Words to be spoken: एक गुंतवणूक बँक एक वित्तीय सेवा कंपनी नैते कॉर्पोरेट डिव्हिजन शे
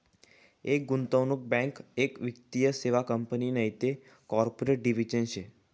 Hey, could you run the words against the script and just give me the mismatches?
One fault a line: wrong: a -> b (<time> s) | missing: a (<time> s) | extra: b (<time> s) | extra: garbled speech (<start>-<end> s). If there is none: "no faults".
no faults